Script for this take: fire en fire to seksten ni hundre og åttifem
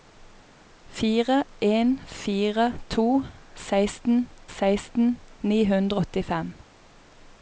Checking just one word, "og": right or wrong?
wrong